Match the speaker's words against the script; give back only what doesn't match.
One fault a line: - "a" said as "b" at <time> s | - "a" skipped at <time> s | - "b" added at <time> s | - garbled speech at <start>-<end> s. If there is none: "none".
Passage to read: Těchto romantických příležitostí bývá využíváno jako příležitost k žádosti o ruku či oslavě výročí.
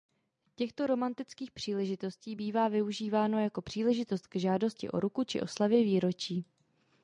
none